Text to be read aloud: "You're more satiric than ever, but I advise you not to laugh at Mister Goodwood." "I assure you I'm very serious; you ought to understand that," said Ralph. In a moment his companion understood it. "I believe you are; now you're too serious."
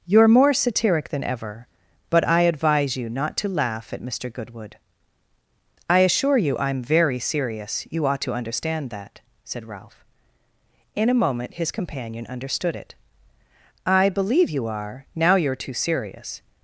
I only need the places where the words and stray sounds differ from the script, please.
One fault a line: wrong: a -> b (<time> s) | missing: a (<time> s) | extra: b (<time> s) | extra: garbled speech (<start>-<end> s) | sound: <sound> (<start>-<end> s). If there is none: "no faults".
no faults